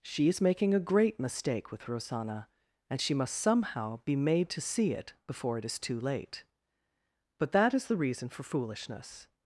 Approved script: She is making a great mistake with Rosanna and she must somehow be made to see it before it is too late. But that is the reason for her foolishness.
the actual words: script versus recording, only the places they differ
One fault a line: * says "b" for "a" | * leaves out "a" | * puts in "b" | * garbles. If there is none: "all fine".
* leaves out "her"